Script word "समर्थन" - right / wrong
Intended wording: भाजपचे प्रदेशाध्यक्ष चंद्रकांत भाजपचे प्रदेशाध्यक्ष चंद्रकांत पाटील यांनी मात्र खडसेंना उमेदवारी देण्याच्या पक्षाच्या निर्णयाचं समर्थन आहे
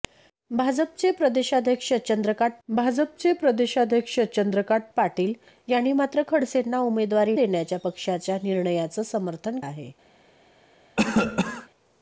right